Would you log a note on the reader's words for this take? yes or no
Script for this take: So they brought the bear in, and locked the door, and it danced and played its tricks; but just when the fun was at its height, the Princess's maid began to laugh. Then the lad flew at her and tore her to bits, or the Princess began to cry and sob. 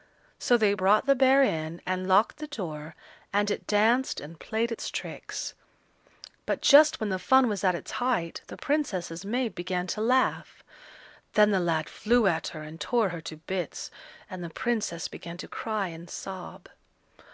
yes